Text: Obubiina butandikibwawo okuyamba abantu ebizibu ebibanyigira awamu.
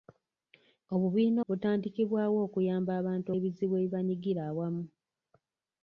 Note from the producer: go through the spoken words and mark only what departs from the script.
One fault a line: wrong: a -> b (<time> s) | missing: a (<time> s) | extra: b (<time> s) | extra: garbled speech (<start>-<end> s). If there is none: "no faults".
no faults